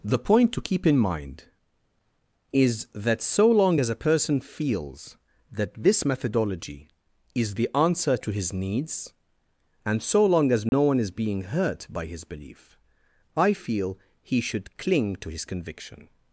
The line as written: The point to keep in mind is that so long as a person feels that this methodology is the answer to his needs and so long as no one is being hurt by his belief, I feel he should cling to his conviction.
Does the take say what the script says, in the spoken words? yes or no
yes